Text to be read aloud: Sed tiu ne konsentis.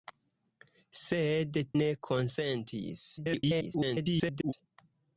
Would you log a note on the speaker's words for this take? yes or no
yes